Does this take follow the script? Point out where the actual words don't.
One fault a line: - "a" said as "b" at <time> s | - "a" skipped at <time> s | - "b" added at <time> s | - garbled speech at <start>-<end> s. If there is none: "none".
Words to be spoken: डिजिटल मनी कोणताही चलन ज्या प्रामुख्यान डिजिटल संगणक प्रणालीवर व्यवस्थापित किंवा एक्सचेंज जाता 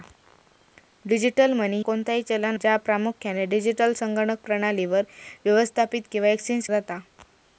none